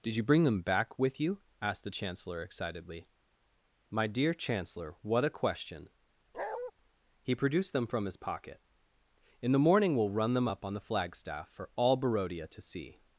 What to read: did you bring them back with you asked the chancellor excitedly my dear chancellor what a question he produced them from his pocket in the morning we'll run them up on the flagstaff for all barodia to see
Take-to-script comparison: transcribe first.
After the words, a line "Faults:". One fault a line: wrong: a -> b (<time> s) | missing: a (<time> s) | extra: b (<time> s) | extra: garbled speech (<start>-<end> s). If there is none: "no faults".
did you bring them back with you asked the chancellor excitedly my dear chancellor what a question he produced them from his pocket in the morning we'll run them up on the flagstaff for all barodia to see
Faults:
no faults